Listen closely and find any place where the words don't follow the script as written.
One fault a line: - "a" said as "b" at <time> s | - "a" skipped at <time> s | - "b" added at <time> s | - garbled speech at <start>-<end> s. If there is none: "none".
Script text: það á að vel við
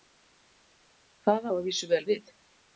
- "vísu" added at 1.7 s